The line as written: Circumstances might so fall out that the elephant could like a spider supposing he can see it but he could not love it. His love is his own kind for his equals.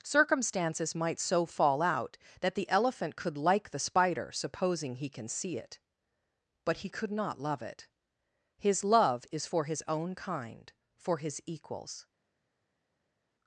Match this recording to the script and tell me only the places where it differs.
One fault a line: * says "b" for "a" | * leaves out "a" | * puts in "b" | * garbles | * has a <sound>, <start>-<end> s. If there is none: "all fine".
* says "the" for "a"
* puts in "for"